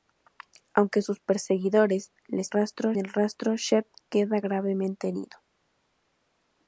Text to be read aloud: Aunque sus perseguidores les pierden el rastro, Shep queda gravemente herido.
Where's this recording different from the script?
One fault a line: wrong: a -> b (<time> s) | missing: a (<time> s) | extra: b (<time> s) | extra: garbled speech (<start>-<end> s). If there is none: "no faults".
wrong: pierden -> rastro (2.5 s)